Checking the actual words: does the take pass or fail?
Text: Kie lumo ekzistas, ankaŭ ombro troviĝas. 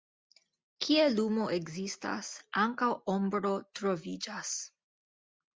pass